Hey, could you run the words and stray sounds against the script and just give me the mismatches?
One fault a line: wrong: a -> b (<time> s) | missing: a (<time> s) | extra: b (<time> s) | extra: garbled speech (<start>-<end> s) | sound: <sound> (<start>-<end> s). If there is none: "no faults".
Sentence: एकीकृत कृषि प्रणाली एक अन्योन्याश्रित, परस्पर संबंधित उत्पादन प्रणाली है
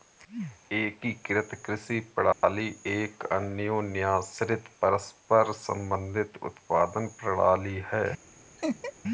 sound: dropout (2.3-2.4 s)
sound: laugh (8.6-8.9 s)